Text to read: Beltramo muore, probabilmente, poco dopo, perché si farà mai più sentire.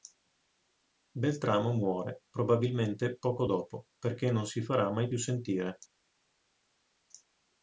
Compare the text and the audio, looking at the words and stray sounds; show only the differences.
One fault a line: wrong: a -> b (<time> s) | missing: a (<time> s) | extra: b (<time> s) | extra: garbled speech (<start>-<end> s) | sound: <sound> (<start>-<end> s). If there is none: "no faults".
extra: non (4.3 s)